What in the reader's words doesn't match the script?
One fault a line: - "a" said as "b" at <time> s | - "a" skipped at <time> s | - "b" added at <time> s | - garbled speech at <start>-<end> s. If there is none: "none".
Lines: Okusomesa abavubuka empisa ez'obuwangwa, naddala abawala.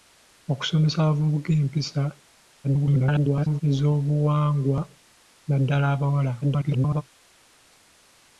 - garbled speech at 2.6-3.6 s
- garbled speech at 6.4-7.0 s